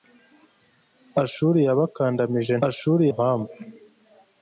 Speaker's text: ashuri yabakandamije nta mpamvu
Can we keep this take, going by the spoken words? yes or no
no